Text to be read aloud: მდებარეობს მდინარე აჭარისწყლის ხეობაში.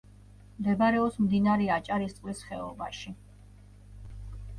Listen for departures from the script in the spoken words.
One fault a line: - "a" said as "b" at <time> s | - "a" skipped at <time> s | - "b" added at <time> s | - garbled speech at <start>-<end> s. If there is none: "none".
none